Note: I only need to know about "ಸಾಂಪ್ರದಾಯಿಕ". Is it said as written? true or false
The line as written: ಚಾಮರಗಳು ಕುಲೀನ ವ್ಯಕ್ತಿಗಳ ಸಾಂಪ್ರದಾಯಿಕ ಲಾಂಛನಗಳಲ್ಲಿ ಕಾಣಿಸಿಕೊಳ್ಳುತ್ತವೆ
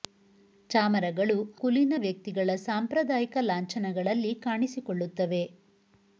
true